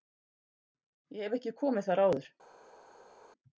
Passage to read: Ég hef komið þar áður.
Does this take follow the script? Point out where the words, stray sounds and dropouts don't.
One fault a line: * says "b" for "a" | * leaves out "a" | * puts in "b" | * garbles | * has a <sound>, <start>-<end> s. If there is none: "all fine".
* puts in "ekki"